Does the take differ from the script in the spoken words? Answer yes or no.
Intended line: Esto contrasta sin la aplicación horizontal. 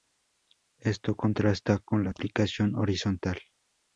yes